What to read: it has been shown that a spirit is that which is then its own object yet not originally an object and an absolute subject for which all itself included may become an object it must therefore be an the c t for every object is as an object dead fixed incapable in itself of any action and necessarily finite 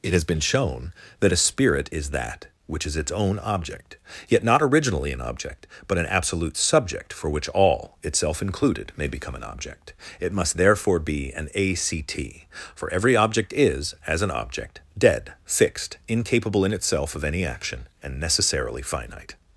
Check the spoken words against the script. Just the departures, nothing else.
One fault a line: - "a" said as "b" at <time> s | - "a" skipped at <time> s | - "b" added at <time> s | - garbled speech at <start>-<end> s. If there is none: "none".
- "then" skipped at 3.0 s
- "and" said as "but" at 5.9 s
- "the" said as "a" at 11.5 s